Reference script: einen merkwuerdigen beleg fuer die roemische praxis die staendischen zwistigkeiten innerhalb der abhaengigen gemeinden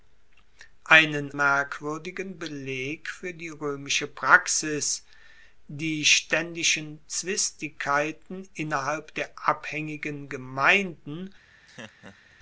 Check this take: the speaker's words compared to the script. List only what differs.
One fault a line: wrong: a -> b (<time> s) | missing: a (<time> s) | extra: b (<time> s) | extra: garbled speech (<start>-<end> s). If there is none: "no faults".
no faults